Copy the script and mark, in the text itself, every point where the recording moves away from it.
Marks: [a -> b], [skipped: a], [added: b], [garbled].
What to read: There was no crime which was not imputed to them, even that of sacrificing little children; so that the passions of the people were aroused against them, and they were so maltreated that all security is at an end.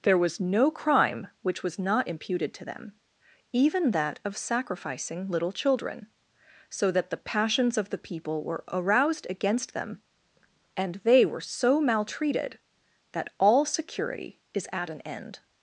There was no crime which was not imputed to them, even that of sacrificing little children; so that the passions of the people were aroused against them, and they were so maltreated that all security is at an end.